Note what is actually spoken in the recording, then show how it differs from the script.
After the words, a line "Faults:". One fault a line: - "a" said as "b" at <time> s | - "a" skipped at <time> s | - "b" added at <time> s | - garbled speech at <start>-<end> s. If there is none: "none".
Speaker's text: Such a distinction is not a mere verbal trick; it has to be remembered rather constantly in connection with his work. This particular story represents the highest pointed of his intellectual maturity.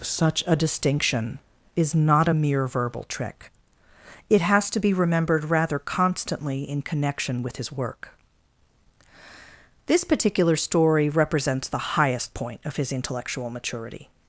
Such a distinction is not a mere verbal trick; it has to be remembered rather constantly in connection with his work. This particular story represents the highest point of his intellectual maturity.
Faults:
- "pointed" said as "point" at 12.3 s